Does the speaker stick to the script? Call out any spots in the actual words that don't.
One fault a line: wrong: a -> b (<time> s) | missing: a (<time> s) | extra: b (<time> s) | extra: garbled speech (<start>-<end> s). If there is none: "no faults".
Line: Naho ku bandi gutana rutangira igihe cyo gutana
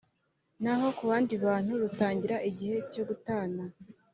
wrong: gutana -> bantu (1.4 s)